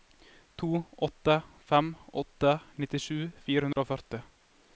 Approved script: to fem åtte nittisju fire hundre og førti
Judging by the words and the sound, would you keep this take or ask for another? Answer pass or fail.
fail